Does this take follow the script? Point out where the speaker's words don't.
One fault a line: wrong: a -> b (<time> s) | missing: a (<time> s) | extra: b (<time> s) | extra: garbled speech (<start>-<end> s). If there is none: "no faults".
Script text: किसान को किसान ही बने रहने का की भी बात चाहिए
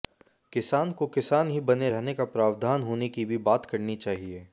extra: प्रावधान होने (2.2 s)
extra: करनी (3.6 s)